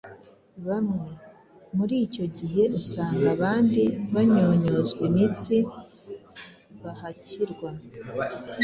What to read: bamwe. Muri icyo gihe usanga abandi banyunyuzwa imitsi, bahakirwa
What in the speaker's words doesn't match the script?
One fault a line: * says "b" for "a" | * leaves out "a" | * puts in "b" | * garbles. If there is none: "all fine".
all fine